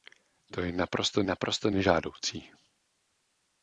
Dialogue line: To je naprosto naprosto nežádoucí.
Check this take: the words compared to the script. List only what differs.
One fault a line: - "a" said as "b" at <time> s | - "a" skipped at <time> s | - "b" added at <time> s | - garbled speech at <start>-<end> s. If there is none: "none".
none